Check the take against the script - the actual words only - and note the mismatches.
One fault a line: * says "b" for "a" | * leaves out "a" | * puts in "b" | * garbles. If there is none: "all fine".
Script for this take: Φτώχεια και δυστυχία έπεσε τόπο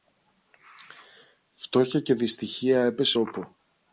all fine